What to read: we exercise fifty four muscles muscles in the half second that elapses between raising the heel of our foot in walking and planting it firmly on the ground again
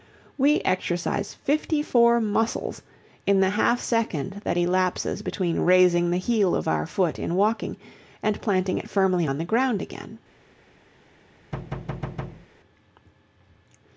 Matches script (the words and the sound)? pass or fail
fail